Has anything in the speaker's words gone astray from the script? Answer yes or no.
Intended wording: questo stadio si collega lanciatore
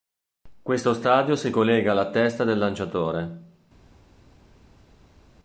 yes